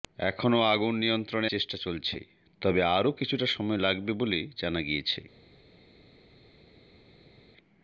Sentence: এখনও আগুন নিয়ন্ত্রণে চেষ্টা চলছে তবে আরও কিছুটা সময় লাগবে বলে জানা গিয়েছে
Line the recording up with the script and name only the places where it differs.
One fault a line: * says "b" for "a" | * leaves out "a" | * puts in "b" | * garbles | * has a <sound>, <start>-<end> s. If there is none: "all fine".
all fine